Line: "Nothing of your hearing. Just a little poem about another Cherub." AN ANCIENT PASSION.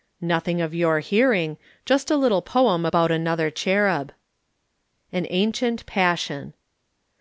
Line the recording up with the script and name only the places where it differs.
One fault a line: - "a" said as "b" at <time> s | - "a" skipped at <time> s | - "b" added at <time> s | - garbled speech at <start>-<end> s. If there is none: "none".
none